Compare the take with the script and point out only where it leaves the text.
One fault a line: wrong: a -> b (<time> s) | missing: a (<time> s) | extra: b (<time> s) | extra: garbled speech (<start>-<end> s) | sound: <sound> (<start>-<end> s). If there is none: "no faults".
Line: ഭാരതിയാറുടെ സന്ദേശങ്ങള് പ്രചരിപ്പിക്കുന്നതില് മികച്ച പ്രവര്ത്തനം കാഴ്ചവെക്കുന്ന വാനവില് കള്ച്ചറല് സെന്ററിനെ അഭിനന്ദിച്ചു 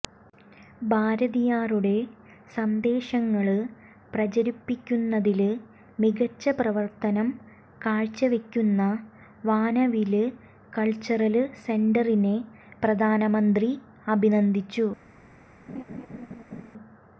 extra: പ്രധാനമന്ത്രി (12.8 s)
sound: laugh (15.7-16.7 s)